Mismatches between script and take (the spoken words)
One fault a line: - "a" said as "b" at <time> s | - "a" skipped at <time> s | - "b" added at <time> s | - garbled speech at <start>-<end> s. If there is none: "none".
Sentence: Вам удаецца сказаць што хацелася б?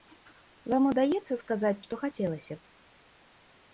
none